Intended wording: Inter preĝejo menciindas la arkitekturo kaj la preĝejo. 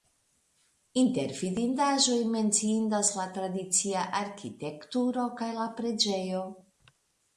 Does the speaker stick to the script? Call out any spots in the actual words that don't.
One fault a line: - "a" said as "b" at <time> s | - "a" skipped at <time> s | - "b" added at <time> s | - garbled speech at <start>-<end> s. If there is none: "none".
- "preĝejo" said as "vidindaĵoj" at 1.4 s
- "tradicia" added at 3.4 s